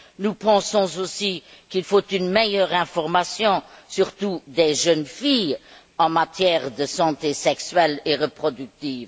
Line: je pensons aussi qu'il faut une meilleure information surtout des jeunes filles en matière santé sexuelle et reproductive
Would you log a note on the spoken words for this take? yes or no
yes